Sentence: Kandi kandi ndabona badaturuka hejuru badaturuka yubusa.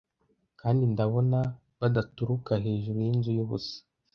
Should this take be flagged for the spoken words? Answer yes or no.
yes